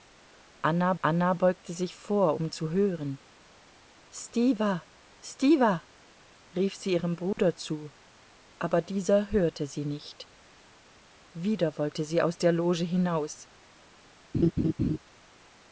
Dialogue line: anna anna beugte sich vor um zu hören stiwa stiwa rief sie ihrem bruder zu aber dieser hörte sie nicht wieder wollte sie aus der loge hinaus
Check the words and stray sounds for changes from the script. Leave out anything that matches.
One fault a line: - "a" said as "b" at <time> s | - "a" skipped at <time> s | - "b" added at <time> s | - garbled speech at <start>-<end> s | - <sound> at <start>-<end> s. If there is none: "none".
- dropout at 7.3-7.4 s
- laugh at 14.3-15.0 s